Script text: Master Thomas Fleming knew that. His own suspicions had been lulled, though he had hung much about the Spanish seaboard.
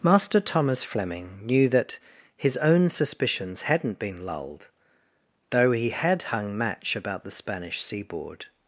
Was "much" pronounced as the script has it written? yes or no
no